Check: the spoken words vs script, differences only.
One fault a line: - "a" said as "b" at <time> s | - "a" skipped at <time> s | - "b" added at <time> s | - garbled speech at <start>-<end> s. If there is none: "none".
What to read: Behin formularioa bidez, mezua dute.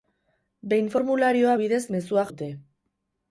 none